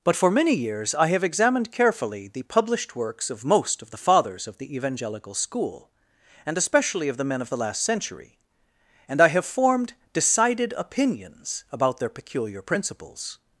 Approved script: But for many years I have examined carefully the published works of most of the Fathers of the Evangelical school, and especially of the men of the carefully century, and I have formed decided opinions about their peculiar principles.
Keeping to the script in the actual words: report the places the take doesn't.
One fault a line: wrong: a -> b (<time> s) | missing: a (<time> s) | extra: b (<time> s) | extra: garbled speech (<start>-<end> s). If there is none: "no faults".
wrong: carefully -> last (7.6 s)